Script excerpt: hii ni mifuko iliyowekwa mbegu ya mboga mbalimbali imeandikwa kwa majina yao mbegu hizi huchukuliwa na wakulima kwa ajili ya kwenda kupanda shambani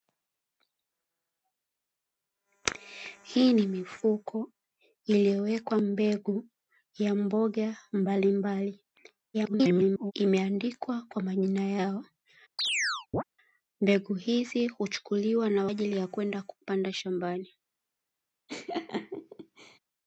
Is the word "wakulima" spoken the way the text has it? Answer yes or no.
no